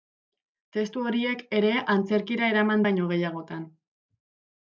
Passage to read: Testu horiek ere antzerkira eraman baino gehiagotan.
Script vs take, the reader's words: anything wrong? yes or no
no